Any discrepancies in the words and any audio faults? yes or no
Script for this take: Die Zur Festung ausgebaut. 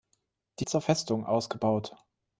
no